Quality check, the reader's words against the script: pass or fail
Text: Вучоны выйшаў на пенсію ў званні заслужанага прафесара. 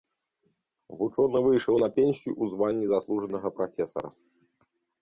pass